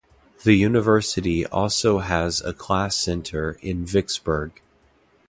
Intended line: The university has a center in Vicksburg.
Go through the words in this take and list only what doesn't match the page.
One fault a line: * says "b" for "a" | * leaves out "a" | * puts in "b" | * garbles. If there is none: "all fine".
* puts in "also"
* puts in "class"